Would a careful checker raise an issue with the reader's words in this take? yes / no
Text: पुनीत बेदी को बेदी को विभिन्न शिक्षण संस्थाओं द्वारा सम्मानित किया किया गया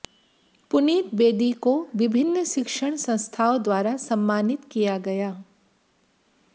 yes